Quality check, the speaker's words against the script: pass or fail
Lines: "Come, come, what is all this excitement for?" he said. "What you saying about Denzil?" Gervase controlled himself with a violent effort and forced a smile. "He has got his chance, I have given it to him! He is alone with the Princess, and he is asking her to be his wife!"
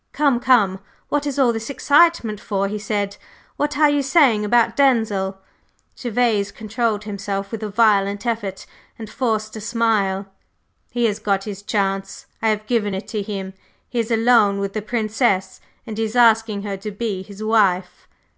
fail